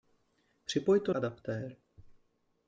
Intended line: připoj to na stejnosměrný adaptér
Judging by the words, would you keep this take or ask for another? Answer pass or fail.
fail